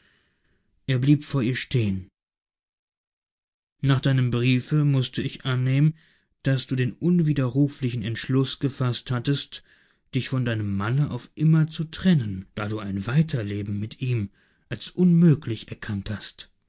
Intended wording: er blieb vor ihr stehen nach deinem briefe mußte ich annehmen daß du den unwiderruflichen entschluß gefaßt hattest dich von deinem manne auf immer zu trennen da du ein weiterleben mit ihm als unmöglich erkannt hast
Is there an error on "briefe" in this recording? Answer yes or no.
no